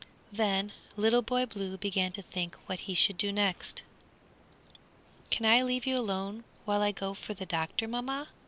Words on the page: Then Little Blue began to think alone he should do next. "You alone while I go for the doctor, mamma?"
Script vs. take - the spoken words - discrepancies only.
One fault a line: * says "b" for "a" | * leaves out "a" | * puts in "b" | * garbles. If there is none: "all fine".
* puts in "Boy"
* says "what" for "alone"
* puts in "Can I leave"